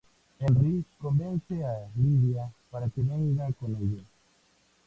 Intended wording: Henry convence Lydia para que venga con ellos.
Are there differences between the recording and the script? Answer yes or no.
yes